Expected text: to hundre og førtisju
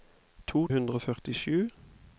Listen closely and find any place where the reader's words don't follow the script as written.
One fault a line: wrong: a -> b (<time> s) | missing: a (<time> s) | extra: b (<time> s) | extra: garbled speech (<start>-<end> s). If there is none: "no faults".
no faults